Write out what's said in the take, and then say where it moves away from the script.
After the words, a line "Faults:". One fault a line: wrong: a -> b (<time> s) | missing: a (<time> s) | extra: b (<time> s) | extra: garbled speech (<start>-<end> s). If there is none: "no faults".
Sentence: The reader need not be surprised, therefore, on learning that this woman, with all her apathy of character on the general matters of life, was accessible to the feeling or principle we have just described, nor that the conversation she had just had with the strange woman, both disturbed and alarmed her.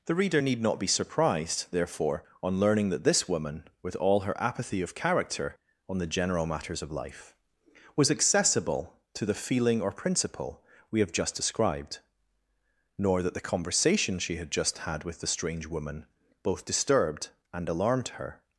The reader need not be surprised, therefore, on learning that this woman, with all her apathy of character on the general matters of life, was accessible to the feeling or principle we have just described, nor that the conversation she had just had with the strange woman, both disturbed and alarmed her.
Faults:
no faults